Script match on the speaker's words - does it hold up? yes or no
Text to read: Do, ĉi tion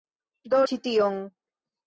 yes